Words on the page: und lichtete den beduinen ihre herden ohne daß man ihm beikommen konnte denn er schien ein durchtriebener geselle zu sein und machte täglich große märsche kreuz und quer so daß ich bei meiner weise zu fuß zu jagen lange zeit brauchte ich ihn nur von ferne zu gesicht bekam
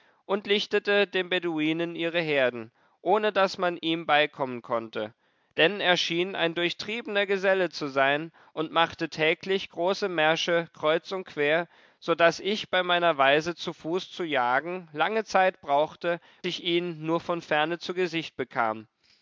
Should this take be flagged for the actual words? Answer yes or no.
no